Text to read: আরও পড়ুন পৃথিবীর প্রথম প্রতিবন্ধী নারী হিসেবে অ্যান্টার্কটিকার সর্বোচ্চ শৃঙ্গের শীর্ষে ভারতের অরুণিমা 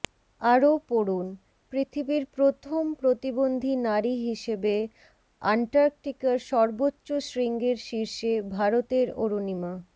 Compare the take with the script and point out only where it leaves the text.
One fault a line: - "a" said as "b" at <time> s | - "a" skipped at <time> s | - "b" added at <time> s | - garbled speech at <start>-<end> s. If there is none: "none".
none